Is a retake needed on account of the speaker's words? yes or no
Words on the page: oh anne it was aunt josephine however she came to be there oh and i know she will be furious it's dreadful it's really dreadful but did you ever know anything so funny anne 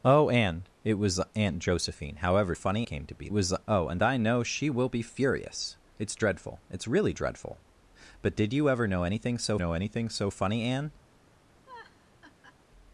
yes